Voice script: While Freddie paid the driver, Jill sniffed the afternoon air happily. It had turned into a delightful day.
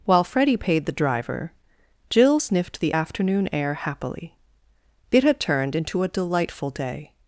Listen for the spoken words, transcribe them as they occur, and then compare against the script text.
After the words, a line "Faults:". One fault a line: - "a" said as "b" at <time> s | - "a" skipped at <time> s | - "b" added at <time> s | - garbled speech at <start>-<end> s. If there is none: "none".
While Freddie paid the driver, Jill sniffed the afternoon air happily. It had turned into a delightful day.
Faults:
none